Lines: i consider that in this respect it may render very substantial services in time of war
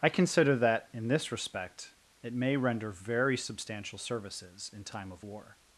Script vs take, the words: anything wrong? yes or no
no